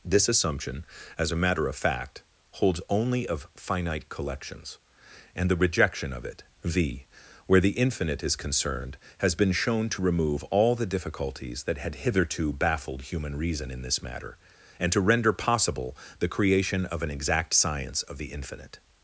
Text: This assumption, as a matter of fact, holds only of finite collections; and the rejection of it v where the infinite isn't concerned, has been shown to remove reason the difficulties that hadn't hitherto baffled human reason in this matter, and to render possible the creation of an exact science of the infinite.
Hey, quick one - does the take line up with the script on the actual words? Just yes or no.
no